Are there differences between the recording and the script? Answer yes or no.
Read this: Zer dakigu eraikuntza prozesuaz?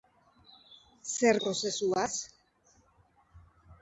yes